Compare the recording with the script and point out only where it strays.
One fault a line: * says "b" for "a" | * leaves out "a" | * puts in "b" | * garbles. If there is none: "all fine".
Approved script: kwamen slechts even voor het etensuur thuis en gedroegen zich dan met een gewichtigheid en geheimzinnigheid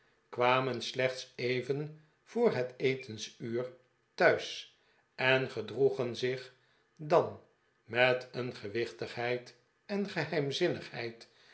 all fine